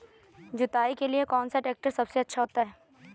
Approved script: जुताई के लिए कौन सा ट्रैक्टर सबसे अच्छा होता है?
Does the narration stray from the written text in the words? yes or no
no